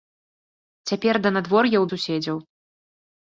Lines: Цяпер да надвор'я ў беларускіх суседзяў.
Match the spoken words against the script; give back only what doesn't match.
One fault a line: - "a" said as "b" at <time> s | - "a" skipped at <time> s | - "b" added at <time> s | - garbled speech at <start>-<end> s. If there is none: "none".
- "беларускіх" skipped at 1.9 s